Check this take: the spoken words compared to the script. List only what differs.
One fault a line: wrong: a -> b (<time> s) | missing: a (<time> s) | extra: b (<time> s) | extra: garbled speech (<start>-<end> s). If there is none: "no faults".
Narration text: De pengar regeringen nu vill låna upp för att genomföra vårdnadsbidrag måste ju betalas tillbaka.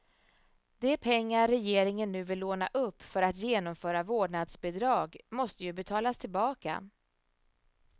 no faults